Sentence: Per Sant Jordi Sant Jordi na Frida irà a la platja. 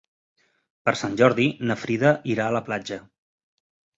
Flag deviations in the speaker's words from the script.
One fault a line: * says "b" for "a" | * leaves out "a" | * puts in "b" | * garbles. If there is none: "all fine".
* leaves out "Sant Jordi"